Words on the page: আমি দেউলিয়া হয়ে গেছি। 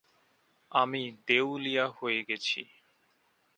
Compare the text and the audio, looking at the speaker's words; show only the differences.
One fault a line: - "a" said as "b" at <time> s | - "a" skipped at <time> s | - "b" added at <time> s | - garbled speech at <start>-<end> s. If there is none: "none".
none